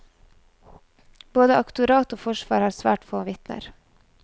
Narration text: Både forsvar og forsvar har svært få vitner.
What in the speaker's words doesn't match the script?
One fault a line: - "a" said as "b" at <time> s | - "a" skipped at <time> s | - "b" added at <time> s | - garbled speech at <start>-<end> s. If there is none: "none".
- "forsvar" said as "aktorat" at 1.6 s